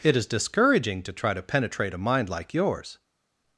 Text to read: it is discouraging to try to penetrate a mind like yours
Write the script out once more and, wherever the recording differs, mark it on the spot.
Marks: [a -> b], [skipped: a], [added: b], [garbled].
it is discouraging to try to penetrate a mind like yours